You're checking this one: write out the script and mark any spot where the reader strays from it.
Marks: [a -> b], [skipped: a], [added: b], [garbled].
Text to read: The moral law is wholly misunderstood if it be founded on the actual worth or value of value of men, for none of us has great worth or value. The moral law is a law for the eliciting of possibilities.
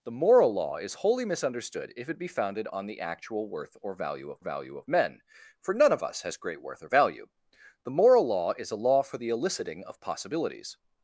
The moral law is wholly misunderstood if it be founded on the actual worth or value of value of men, for none of us has great worth or value. The moral law is a law for the eliciting of possibilities.